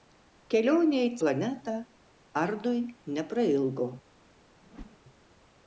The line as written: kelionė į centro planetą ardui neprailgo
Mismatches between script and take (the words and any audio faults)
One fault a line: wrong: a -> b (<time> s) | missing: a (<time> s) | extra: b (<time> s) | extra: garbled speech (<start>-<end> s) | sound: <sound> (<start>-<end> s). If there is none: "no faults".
missing: centro (1.1 s)
sound: whoosh (4.6-5.0 s)